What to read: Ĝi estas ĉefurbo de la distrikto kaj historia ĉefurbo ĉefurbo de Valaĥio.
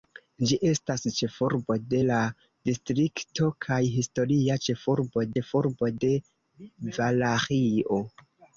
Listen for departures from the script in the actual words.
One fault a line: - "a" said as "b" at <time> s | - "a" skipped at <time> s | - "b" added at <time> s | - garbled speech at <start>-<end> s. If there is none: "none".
none